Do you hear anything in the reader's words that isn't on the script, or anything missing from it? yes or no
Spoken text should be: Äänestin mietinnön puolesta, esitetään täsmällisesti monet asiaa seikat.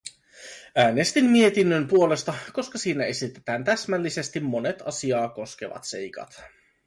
yes